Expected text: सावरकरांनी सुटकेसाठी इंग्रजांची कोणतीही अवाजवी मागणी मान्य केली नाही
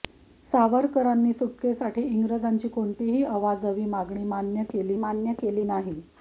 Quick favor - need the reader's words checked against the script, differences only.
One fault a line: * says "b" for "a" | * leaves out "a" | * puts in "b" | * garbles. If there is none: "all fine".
* puts in "मान्य केली"